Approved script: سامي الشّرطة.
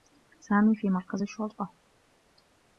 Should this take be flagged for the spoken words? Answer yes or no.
yes